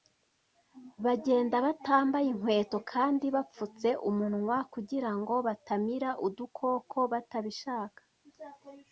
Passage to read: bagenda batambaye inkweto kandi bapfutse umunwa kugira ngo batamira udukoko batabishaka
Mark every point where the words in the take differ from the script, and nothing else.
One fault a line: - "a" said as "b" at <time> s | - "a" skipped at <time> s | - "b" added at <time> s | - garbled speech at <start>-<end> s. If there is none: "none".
none